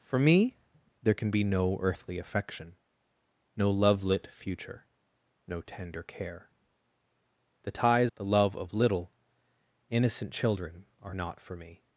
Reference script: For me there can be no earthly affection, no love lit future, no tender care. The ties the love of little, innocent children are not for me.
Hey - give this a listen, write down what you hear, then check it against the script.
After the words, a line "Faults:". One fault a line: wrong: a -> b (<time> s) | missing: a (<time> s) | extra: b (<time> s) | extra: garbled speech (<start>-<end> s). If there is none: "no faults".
For me there can be no earthly affection, no love lit future, no tender care. The ties the love of little, innocent children are not for me.
Faults:
no faults